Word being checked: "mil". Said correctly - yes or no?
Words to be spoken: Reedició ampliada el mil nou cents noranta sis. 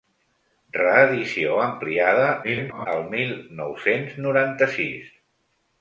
yes